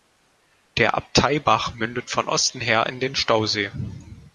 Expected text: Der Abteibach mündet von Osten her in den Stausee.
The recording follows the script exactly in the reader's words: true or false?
true